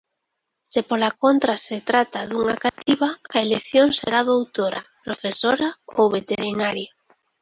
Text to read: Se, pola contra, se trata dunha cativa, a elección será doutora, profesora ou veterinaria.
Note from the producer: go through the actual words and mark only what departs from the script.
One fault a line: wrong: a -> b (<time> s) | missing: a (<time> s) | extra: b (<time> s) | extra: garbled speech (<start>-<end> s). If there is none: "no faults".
no faults